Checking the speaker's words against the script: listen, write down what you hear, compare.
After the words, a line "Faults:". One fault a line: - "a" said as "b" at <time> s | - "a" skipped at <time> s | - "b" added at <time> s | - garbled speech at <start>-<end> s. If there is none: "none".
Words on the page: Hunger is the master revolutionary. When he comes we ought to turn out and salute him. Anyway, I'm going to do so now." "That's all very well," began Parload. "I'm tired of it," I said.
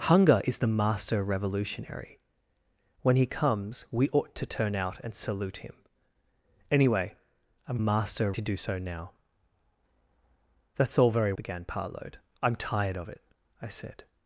Hunger is the master revolutionary. When he comes we ought to turn out and salute him. Anyway, I'm master to do so now." "That's all very," began Parload. "I'm tired of it," I said.
Faults:
- "going" said as "master" at 7.8 s
- "well" skipped at 11.3 s